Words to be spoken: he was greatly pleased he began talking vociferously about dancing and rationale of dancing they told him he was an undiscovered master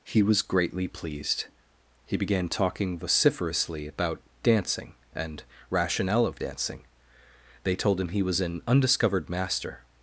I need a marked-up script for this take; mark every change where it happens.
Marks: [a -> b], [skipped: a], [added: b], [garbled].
he was greatly pleased he began talking vociferously about dancing and rationale of dancing they told him he was an undiscovered master